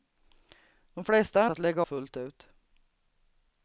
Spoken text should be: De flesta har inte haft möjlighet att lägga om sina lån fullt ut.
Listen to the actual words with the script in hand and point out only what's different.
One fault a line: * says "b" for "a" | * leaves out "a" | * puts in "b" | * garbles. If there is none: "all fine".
* leaves out "inte haft möjlighet"
* leaves out "om sina lån"